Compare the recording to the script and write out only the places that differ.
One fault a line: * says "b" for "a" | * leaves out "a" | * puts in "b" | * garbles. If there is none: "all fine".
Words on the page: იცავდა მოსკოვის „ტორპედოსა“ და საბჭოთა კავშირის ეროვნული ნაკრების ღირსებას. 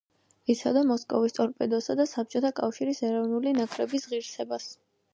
all fine